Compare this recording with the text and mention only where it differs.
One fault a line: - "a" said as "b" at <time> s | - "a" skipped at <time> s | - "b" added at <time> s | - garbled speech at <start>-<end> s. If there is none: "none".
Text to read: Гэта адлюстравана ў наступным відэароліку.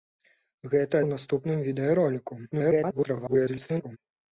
- "адлюстравана" skipped at 0.9 s
- garbled speech at 2.5-4.0 s